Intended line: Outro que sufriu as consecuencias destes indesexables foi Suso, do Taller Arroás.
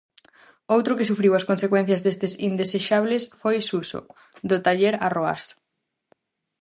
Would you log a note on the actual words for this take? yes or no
no